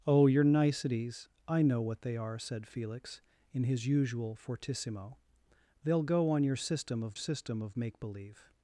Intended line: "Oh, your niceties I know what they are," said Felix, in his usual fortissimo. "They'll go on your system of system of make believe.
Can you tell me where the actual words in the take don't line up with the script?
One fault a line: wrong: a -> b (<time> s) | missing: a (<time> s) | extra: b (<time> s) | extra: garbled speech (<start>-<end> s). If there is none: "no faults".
no faults